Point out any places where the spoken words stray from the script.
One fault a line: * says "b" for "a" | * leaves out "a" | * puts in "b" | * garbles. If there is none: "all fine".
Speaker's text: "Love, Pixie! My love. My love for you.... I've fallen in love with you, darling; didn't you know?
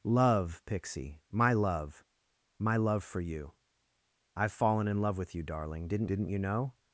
* puts in "didn't"